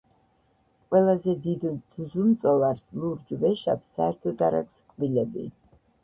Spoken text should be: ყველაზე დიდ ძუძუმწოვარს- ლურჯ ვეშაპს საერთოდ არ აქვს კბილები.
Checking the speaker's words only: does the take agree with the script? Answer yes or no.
yes